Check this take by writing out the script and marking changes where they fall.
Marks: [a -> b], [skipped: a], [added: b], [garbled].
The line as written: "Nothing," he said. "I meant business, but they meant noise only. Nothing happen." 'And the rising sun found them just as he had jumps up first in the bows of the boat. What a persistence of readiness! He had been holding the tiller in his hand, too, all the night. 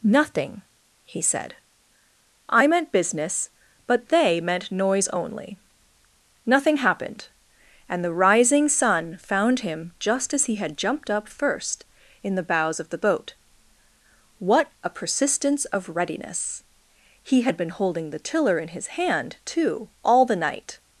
"Nothing," he said. "I meant business, but they meant noise only. Nothing [happen." -> happened] 'And the rising sun found [them -> him] just as he had [jumps -> jumped] up first in the bows of the boat. What a persistence of readiness! He had been holding the tiller in his hand, too, all the night.